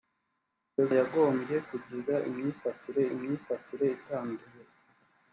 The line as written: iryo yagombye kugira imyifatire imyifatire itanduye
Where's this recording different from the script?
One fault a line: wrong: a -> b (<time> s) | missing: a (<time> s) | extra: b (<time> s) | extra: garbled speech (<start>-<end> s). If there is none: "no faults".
no faults